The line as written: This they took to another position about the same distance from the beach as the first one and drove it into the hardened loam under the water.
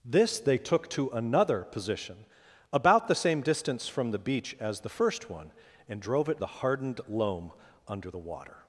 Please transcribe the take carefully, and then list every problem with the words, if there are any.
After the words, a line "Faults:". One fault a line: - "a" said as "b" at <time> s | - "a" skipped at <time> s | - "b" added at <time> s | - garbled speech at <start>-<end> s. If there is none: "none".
This they took to another position about the same distance from the beach as the first one and drove it the hardened loam under the water.
Faults:
- "into" skipped at 6.4 s